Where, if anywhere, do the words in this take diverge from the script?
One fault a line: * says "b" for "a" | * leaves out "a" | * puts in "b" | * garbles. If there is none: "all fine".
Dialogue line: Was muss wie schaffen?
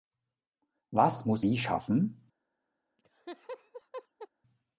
all fine